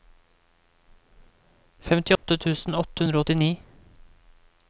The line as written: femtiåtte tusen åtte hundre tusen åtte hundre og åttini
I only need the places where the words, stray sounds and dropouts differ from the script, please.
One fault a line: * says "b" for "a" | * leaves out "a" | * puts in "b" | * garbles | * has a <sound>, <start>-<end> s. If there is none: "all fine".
* has a dropout, 2.2-2.2 s
* leaves out "tusen åtte hundre"